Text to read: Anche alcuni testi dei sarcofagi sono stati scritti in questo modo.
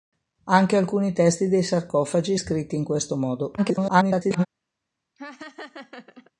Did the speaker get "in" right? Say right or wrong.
right